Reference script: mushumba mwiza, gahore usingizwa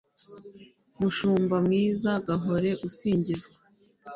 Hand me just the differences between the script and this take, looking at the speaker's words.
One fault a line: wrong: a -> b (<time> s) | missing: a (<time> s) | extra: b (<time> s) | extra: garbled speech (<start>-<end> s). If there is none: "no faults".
no faults